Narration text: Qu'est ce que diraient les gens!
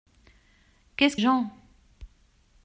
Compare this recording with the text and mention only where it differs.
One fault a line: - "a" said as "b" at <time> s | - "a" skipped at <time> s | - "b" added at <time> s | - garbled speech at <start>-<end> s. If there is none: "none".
- "que diraient les" skipped at 1.2 s